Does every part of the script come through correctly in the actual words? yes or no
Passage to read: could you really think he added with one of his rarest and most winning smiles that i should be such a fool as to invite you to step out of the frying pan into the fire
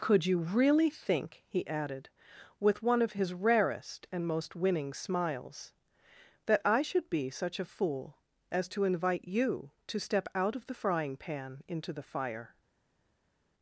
yes